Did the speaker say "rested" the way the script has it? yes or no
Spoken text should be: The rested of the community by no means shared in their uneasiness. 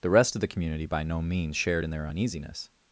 no